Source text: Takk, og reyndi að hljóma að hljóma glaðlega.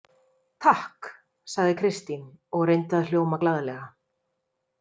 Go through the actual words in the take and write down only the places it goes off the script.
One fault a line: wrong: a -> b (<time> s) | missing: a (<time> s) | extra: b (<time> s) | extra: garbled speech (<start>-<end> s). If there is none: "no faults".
extra: sagði Kristín (1.6 s)
missing: að hljóma (3.4 s)